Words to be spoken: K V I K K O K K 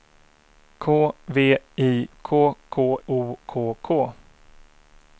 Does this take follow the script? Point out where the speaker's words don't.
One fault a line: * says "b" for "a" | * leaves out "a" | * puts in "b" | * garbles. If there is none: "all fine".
all fine